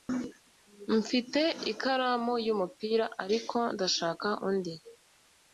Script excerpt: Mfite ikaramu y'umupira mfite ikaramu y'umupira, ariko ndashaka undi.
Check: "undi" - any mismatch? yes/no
no